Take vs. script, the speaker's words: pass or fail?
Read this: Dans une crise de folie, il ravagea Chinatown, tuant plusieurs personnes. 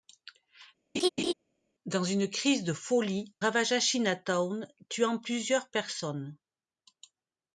fail